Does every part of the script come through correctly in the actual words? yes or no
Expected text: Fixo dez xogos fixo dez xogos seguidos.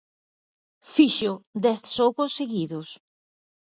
no